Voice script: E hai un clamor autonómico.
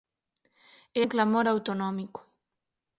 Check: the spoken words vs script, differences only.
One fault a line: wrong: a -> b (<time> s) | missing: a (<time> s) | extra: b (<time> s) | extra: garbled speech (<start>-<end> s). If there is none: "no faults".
missing: hai (1.0 s)